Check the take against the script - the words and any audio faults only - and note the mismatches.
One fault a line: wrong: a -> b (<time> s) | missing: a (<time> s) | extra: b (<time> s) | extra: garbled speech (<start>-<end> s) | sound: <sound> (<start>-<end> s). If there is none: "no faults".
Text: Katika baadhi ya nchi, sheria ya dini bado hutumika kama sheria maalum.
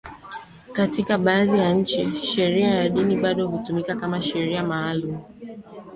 no faults